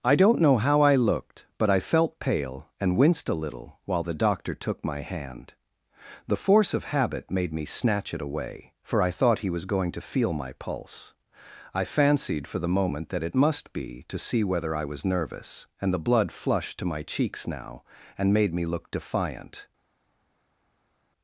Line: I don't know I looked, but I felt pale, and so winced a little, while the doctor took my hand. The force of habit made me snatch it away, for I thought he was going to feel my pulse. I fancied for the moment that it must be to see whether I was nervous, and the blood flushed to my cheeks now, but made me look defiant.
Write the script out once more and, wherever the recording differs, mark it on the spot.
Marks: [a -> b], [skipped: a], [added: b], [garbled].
I don't know [added: how] I looked, but I felt pale, and [skipped: so] winced a little, while the doctor took my hand. The force of habit made me snatch it away, for I thought he was going to feel my pulse. I fancied for the moment that it must be to see whether I was nervous, and the blood flushed to my cheeks now, [but -> and] made me look defiant.